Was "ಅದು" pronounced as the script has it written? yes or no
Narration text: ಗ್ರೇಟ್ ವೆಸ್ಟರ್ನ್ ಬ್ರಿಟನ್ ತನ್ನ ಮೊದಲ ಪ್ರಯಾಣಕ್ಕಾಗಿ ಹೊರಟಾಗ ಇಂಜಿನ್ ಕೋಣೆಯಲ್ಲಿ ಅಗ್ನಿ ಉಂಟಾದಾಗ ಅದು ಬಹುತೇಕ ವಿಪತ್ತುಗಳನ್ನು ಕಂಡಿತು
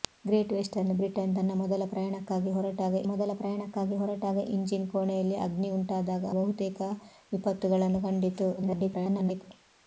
no